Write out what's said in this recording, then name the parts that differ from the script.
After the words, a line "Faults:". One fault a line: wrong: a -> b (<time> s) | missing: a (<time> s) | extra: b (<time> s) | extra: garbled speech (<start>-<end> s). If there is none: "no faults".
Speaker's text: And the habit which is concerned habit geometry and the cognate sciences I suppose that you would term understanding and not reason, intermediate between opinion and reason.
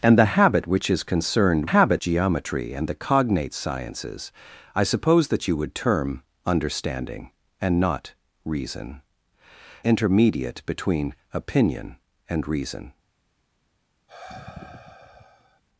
And the habit which is concerned habit geometry and the cognate sciences I suppose that you would term understanding and not reason, intermediate between opinion and reason.
Faults:
no faults